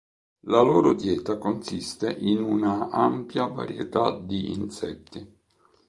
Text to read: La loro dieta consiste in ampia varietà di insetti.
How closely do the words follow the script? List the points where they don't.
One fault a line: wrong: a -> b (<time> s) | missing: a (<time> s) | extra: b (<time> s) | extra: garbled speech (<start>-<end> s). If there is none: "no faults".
extra: una (2.4 s)